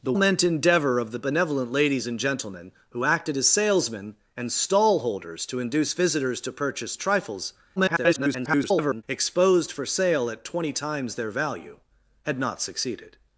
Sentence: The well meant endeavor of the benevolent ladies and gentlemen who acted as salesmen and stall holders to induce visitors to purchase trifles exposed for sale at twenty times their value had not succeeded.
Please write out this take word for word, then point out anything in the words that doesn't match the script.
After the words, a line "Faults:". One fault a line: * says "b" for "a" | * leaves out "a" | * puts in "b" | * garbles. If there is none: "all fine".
The meant endeavor of the benevolent ladies and gentlemen who acted as salesmen and stall holders to induce visitors to purchase trifles [garbled] exposed for sale at twenty times their value had not succeeded.
Faults:
* leaves out "well"
* garbles